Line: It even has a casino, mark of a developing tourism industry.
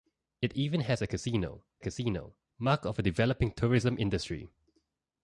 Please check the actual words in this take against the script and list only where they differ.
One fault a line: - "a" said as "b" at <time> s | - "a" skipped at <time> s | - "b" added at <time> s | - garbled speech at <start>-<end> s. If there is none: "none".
- "casino" added at 1.8 s